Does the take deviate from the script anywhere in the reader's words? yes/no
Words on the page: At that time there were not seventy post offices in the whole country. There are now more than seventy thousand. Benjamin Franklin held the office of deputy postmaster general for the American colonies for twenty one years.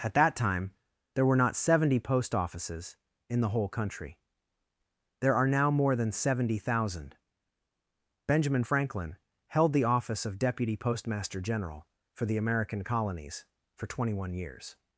no